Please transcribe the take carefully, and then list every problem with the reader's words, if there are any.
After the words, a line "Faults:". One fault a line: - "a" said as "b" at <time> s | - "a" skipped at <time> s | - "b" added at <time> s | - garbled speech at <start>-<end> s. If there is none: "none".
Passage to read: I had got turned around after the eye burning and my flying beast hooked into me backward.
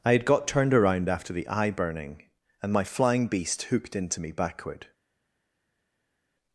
I had got turned around after the eye burning and my flying beast hooked into me backward.
Faults:
none